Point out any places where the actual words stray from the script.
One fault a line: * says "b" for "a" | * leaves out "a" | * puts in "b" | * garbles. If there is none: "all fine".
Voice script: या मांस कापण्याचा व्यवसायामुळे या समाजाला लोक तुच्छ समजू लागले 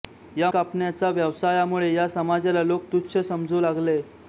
* leaves out "मांस"